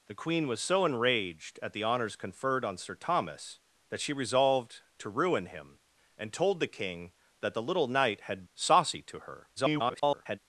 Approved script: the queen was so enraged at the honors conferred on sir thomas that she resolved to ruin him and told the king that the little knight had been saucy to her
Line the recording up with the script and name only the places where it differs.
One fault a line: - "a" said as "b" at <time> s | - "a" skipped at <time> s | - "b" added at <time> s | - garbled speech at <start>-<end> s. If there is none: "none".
- "been" skipped at 8.4 s
- garbled speech at 9.6-10.4 s